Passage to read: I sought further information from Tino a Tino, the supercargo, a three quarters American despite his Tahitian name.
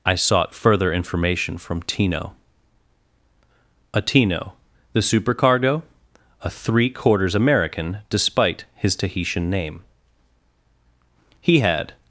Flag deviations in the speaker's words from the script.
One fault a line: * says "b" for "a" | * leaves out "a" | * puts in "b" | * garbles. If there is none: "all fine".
* puts in "He had"